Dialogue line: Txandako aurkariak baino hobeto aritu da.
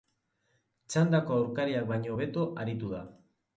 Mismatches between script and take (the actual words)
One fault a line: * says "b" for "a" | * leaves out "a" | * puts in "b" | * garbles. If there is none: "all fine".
all fine